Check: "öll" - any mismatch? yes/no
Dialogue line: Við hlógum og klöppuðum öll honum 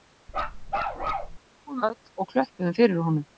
yes